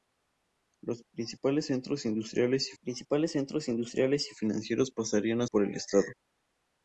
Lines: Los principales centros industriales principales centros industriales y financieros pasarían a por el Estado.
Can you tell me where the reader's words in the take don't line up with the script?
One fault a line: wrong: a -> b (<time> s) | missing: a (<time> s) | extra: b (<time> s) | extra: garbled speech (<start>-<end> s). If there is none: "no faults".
no faults